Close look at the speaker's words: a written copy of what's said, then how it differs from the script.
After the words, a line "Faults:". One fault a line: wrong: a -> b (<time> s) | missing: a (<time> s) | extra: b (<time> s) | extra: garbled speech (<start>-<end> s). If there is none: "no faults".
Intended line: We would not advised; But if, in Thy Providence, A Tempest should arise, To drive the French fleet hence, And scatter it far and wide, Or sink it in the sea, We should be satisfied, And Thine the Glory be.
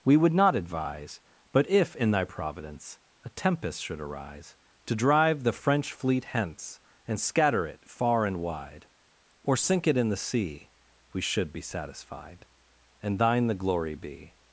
We would not advise; But if, in Thy Providence, A Tempest should arise, To drive the French fleet hence, And scatter it far and wide, Or sink it in the sea, We should be satisfied, And Thine the Glory be.
Faults:
wrong: advised -> advise (0.6 s)